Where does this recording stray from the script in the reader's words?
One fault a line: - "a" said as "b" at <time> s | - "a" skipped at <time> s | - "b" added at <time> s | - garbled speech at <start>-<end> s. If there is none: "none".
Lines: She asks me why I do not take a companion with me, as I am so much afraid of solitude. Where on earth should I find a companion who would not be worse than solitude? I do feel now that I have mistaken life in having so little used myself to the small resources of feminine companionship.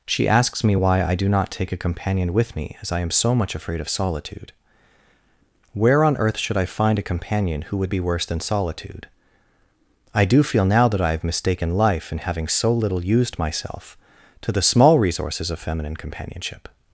- "not" skipped at 7.9 s